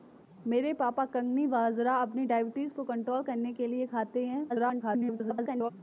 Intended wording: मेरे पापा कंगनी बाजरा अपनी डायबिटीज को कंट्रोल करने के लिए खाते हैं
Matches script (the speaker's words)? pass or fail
fail